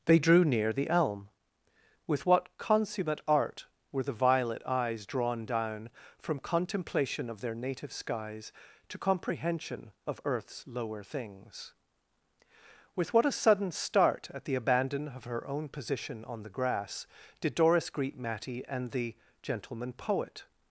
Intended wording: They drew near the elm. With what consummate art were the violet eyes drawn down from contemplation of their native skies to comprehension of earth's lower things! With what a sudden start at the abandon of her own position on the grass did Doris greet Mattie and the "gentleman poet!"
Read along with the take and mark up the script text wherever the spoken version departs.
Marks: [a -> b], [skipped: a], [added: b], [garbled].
They drew near the elm. With what consummate art were the violet eyes drawn down from contemplation of their native skies to comprehension of earth's lower things! With what a sudden start at the abandon of her own position on the grass did Doris greet Mattie and the "gentleman poet!"